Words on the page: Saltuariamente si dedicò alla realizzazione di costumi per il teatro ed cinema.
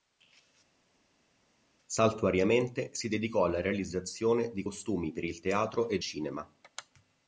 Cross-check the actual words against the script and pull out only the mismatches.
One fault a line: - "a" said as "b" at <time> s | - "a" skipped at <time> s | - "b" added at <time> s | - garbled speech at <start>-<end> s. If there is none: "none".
none